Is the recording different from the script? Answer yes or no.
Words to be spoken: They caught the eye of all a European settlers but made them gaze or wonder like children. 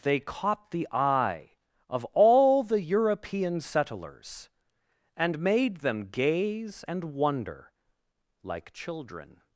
yes